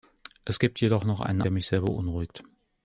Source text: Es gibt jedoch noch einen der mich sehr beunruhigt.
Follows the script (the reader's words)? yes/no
yes